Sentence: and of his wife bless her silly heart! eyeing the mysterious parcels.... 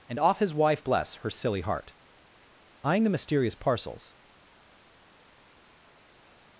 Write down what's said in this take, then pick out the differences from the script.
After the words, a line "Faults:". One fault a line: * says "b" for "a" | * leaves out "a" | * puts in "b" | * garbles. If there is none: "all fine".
and off his wife bless her silly heart! eyeing the mysterious parcels....
Faults:
* says "off" for "of"